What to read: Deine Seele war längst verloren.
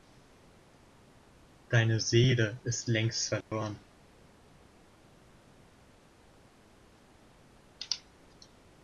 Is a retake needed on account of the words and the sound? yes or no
yes